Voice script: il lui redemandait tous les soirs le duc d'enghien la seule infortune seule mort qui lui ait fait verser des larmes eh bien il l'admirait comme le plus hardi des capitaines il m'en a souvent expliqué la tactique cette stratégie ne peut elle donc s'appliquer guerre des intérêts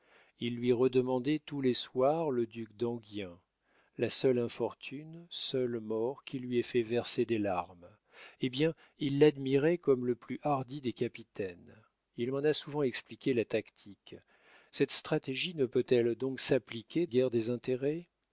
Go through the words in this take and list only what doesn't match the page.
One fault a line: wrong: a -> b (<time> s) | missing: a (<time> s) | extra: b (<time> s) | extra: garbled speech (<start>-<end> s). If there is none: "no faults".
no faults